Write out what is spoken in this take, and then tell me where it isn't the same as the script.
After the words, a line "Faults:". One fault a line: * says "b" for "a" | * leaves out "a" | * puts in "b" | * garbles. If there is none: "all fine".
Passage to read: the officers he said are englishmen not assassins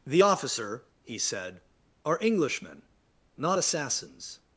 the officer he said are englishmen not assassins
Faults:
* says "officer" for "officers"